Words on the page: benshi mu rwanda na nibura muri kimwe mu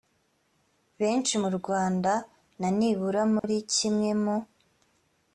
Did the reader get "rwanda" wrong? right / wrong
right